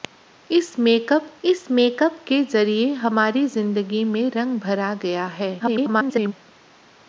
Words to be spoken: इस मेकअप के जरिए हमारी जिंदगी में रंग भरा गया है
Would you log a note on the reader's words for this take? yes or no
yes